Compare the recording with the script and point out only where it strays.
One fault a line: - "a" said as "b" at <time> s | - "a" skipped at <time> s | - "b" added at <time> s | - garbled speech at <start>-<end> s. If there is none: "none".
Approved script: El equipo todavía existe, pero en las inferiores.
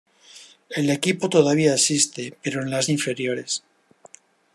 none